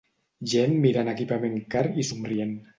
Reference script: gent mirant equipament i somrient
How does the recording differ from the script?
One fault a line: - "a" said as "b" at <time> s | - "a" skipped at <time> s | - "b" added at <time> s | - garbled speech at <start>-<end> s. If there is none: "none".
- "car" added at 1.8 s